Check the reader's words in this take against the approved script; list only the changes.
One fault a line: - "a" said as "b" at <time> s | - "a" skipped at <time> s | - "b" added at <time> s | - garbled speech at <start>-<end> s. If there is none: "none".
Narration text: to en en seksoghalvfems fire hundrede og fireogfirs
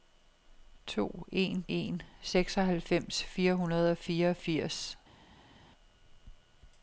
none